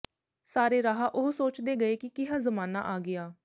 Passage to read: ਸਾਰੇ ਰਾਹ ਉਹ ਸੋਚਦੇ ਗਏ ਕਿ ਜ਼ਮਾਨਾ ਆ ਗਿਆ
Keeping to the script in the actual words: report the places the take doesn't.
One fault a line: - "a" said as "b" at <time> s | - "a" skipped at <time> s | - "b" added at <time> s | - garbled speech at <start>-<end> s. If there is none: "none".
- "ਕਿਹਾ" added at 2.1 s